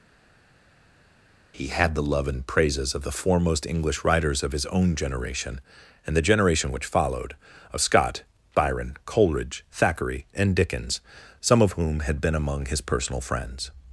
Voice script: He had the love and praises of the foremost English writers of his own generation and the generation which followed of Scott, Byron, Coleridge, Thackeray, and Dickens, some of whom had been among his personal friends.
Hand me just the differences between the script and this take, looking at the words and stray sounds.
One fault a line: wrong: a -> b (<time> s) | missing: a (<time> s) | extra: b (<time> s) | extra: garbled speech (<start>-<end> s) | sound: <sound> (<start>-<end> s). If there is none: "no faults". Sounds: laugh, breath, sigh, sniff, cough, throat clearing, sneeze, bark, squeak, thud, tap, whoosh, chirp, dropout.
no faults